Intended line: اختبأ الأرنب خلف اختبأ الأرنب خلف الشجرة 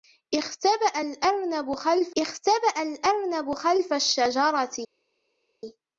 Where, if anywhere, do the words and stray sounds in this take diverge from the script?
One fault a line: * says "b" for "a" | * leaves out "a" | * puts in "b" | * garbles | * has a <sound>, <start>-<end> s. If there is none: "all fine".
all fine